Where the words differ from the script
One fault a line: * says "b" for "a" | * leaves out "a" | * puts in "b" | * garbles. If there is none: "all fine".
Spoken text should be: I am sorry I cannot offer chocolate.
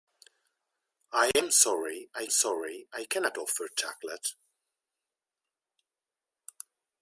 * puts in "sorry I"